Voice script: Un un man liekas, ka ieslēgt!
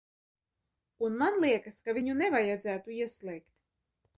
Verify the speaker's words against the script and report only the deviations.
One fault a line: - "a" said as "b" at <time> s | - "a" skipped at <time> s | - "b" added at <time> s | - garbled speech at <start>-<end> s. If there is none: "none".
- "un" skipped at 1.2 s
- "viņu nevajadzētu" added at 2.0 s